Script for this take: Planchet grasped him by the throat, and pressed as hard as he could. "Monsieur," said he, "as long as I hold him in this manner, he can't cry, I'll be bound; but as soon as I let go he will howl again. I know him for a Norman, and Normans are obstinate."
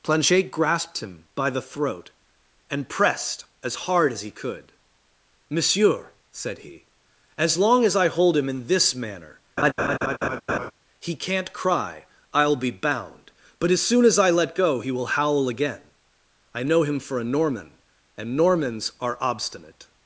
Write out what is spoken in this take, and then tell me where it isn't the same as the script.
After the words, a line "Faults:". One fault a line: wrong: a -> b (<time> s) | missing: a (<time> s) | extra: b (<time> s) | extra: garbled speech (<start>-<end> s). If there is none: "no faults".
Planchet grasped him by the throat, and pressed as hard as he could. "Monsieur," said he, "as long as I hold him in this manner, he can't cry, I'll be bound; but as soon as I let go he will howl again. I know him for a Norman, and Normans are obstinate."
Faults:
no faults